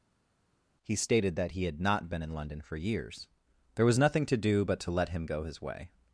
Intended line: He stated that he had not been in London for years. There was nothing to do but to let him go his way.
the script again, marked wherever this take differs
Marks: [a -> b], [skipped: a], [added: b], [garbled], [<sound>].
He stated that he had not been in London for years. There was nothing to do but to let him go his way.